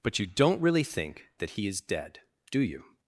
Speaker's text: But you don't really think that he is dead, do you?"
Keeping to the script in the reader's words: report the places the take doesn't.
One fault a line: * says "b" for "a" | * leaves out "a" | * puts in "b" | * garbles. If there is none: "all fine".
all fine